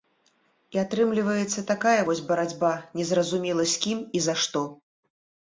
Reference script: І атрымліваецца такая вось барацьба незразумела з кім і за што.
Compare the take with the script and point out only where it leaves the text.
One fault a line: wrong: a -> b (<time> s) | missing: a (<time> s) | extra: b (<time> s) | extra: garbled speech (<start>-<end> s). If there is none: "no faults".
no faults